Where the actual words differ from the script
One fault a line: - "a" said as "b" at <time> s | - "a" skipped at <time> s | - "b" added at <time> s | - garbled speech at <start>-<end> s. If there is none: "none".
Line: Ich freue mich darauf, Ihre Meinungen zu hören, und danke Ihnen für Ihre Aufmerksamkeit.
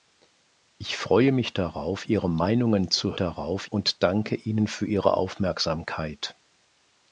- "hören" said as "darauf" at 3.2 s